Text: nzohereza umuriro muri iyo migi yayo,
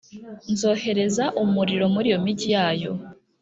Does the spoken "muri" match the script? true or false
true